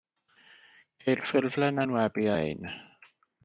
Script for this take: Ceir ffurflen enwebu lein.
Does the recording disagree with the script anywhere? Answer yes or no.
no